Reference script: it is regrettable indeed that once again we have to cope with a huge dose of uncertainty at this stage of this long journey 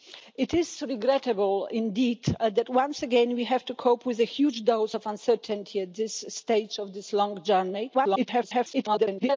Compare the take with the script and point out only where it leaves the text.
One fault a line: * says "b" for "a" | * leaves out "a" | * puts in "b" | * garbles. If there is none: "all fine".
* garbles